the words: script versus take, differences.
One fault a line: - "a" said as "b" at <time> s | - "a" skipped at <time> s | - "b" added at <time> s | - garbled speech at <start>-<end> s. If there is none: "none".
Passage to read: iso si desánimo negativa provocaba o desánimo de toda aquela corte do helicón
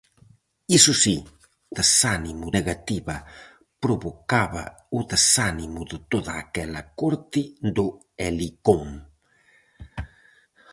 none